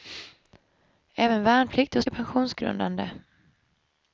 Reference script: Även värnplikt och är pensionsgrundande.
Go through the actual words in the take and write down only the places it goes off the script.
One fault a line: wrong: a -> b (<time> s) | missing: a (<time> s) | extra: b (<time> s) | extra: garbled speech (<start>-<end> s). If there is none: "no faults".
no faults